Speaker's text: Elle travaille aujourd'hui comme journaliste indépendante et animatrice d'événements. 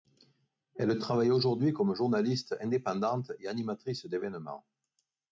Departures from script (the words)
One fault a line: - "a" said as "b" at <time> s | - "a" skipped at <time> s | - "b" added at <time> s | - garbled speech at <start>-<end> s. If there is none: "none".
none